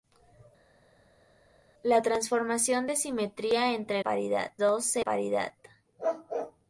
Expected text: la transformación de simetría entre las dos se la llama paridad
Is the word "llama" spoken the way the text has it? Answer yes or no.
no